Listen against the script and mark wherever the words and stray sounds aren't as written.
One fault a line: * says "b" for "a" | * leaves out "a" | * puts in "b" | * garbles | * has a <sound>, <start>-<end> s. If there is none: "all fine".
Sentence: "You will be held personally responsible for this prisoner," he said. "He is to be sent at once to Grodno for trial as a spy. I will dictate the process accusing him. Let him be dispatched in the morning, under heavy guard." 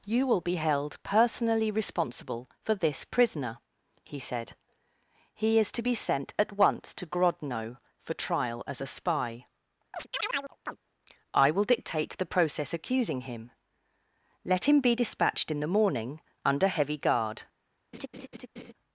* has a chirp, 9.9-10.8 s
* has a laugh, 17.9-18.7 s